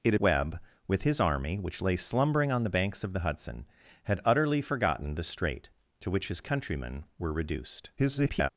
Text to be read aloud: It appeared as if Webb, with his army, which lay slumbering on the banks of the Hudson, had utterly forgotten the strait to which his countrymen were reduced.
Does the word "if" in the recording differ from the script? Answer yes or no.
yes